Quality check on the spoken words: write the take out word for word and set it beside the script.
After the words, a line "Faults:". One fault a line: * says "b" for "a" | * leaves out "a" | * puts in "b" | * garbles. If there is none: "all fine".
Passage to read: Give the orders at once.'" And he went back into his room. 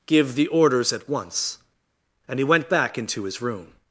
Give the orders at once.'" And he went back into his room.
Faults:
all fine